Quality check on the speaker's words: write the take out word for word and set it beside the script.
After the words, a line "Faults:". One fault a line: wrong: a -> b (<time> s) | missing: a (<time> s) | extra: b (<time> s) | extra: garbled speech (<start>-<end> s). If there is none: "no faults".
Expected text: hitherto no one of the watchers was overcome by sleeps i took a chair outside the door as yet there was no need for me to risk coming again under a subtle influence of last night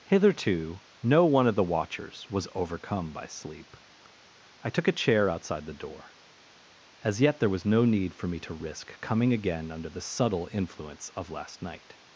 hitherto no one of the watchers was overcome by sleep i took a chair outside the door as yet there was no need for me to risk coming again under the subtle influence of last night
Faults:
wrong: sleeps -> sleep (3.3 s)
wrong: a -> the (9.9 s)